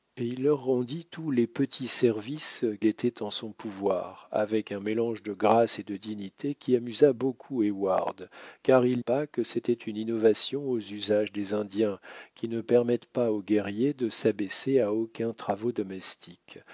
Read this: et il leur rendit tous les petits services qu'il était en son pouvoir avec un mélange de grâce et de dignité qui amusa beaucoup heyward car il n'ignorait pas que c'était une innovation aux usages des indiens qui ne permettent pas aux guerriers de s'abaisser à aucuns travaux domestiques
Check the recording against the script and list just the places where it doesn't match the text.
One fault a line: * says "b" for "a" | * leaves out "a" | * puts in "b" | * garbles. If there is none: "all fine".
* leaves out "qu'il"
* leaves out "n'ignorait"